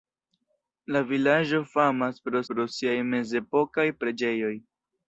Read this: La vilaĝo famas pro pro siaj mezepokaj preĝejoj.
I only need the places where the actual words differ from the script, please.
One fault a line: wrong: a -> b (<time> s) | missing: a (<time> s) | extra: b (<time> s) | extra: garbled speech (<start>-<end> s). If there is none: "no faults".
no faults